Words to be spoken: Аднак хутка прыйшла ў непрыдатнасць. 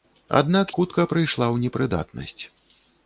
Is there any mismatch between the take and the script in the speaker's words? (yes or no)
no